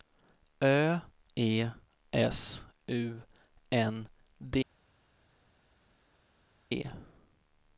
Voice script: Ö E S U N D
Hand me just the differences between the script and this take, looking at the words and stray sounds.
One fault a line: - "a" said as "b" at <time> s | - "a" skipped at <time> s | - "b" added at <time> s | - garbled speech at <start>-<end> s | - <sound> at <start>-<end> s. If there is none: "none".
none